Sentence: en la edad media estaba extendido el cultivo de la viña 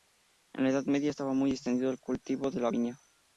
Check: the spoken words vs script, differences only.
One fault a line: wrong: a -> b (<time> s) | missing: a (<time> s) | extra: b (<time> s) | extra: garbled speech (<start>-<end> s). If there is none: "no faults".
extra: muy (1.3 s)